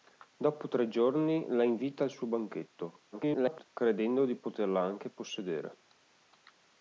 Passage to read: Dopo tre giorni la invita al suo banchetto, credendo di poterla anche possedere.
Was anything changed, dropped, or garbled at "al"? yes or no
no